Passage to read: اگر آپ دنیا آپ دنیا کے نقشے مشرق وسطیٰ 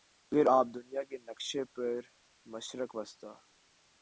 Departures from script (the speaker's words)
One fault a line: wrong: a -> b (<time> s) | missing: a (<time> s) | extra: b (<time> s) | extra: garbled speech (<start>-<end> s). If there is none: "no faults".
missing: آپ دنیا (1.0 s)
extra: پر (1.7 s)